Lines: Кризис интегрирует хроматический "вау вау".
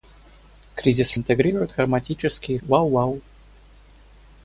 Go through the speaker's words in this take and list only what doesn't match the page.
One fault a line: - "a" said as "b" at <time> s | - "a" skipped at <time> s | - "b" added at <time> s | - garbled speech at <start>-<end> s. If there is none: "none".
none